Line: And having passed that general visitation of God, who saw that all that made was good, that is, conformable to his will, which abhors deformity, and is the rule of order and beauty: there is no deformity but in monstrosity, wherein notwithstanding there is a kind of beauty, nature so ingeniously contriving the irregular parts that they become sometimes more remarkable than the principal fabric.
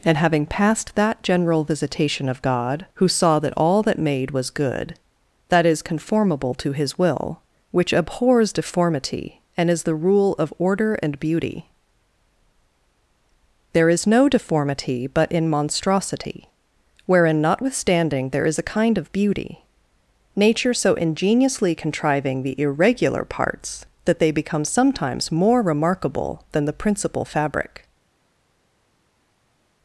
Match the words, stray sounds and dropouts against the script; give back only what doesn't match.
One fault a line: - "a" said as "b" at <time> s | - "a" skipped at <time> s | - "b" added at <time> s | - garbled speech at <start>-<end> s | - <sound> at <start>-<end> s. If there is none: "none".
none